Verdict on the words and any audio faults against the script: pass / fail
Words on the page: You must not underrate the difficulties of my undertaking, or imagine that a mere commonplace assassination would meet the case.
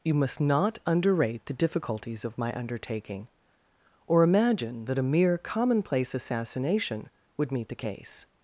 pass